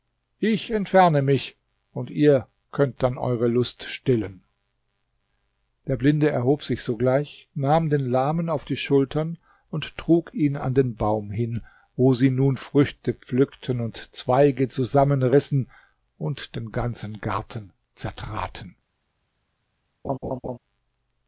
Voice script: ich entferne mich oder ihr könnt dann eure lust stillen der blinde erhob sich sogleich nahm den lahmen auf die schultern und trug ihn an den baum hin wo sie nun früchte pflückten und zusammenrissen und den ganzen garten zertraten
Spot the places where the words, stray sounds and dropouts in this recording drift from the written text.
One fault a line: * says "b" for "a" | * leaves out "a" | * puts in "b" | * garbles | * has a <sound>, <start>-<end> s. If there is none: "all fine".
* says "und" for "oder"
* puts in "zweige"
* has a laugh, 20.0-20.6 s